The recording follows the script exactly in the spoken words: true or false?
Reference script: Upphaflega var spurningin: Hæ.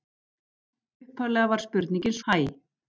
true